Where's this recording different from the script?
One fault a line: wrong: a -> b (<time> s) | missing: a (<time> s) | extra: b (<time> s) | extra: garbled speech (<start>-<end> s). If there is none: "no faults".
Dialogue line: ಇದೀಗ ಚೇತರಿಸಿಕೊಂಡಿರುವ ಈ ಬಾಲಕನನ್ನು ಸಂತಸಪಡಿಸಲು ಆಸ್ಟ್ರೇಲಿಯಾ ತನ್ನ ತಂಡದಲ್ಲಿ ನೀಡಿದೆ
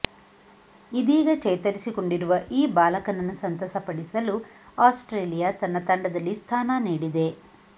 extra: ಸ್ಥಾನ (6.3 s)